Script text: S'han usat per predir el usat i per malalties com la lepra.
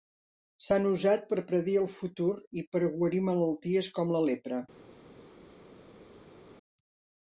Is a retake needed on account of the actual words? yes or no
yes